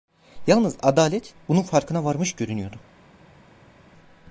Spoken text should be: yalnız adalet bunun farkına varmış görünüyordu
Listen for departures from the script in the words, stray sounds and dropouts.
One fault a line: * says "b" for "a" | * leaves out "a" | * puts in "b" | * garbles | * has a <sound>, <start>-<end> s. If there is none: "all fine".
all fine